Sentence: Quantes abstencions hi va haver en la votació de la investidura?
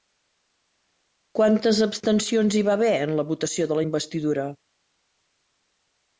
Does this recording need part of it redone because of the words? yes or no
no